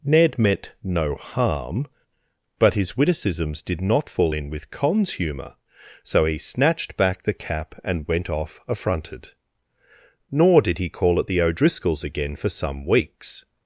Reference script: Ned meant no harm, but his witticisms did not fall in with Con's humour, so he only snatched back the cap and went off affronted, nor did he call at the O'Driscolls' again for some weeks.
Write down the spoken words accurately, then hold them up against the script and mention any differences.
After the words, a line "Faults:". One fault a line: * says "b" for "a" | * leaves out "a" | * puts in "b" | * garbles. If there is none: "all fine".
Ned meant no harm, but his witticisms did not fall in with Con's humour, so he snatched back the cap and went off affronted, nor did he call at the O'Driscolls' again for some weeks.
Faults:
* leaves out "only"